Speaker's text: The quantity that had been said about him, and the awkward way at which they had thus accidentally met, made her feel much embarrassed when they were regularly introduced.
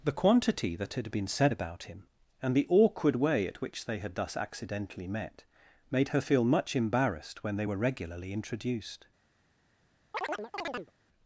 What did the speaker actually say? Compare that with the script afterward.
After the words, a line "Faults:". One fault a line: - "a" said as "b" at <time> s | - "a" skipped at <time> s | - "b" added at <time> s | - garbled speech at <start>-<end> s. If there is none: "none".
The quantity that had been said about him, and the awkward way at which they had thus accidentally met, made her feel much embarrassed when they were regularly introduced.
Faults:
none